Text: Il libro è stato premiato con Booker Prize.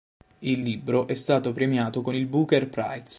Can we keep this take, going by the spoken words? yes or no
no